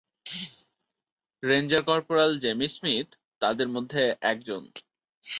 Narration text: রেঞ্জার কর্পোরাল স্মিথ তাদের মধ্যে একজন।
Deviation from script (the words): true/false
true